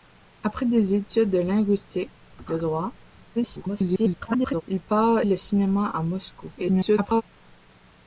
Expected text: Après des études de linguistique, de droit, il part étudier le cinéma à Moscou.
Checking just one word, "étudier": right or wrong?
wrong